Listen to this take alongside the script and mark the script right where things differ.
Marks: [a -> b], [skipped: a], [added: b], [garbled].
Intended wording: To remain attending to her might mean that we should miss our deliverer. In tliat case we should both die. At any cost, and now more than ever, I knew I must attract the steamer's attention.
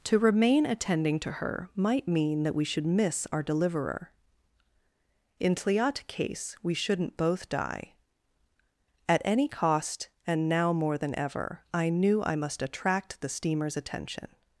To remain attending to her might mean that we should miss our deliverer. In tliat case we [should -> shouldn't] both die. At any cost, and now more than ever, I knew I must attract the steamer's attention.